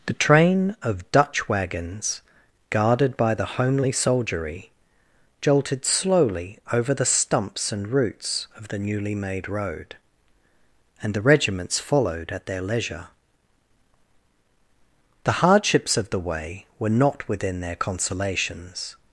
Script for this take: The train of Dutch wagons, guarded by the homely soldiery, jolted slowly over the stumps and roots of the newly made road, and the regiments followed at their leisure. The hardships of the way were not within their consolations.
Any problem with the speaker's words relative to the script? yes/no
no